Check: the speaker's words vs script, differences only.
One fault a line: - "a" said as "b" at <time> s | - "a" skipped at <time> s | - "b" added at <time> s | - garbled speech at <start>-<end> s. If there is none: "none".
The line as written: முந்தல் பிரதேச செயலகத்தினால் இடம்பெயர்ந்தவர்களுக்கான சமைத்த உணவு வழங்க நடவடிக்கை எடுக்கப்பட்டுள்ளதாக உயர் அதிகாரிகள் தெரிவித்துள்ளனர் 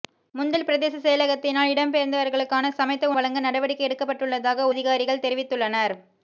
- "உணவு" skipped at 3.1 s
- "உயர்" skipped at 4.7 s